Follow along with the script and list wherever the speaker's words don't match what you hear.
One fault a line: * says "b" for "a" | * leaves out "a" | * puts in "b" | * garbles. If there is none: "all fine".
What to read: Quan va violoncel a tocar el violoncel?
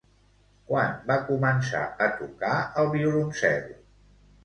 * says "començar" for "violoncel"